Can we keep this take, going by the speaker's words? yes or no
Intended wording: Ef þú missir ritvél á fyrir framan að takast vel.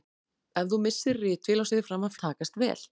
yes